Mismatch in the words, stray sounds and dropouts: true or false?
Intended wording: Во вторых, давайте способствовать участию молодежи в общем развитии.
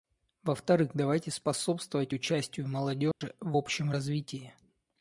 true